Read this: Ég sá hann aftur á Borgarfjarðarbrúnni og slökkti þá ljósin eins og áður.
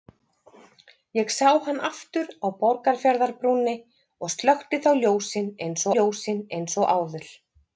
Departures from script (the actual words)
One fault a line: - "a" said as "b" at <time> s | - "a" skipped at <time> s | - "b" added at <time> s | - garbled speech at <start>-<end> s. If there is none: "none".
- "ljósin eins" added at 6.0 s